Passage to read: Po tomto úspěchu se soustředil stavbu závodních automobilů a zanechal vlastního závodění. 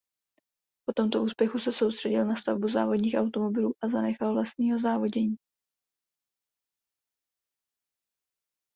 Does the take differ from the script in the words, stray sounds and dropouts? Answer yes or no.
yes